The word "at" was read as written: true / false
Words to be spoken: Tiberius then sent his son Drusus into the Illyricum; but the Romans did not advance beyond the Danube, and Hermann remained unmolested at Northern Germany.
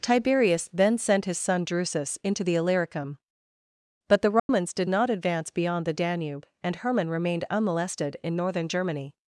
false